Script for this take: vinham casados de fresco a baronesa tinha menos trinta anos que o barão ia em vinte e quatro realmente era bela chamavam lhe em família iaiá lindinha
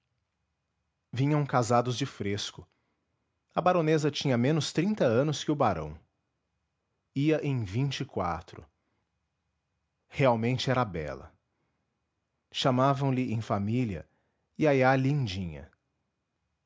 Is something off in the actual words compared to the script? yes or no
no